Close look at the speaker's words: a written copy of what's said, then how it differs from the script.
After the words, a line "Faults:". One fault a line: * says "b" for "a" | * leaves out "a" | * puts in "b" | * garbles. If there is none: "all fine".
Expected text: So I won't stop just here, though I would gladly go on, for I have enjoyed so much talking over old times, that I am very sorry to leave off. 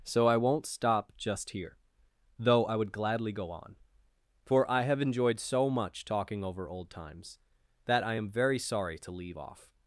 So I won't stop just here, though I would gladly go on, for I have enjoyed so much talking over old times, that I am very sorry to leave off.
Faults:
all fine